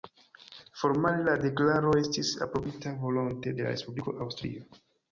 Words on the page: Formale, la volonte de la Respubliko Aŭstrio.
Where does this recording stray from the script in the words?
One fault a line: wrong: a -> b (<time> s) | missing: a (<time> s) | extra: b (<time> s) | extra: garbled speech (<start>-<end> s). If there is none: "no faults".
extra: deklaro estis aprobita (1.4 s)